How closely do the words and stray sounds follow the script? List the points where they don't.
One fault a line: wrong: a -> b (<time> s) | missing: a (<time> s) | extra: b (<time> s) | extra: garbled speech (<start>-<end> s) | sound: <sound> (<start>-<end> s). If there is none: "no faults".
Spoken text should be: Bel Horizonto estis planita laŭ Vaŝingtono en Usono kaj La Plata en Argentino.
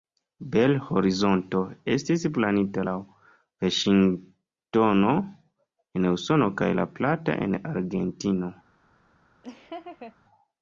sound: laugh (9.4-10.2 s)